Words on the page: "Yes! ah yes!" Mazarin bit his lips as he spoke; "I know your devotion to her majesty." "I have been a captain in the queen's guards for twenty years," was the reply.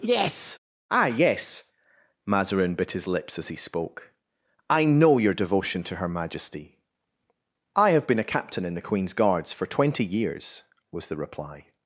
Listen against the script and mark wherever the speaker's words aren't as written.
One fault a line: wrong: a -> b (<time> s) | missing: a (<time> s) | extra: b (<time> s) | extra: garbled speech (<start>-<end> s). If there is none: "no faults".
no faults